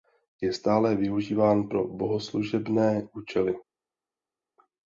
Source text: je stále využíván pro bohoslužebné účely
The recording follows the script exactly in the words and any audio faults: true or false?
true